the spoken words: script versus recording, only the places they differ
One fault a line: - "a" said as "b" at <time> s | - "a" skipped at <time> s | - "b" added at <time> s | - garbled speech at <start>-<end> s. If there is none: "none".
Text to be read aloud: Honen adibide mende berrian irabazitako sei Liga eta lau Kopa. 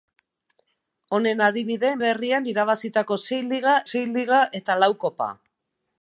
- "mende" skipped at 1.9 s
- "sei Liga" added at 3.9 s